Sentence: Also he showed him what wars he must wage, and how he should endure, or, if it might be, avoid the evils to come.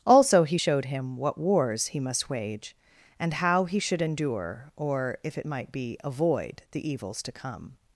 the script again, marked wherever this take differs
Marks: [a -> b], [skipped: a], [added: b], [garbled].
Also he showed him what wars he must wage, and how he should endure, or, if it might be, avoid the evils to come.